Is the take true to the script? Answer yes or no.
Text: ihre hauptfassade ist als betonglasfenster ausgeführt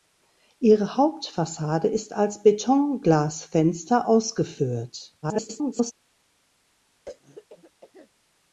no